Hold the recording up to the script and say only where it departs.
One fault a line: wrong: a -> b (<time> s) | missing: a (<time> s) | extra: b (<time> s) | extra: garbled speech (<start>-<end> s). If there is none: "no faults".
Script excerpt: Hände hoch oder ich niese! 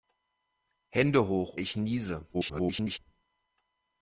missing: oder (1.6 s)
extra: garbled speech (2.3-3.0 s)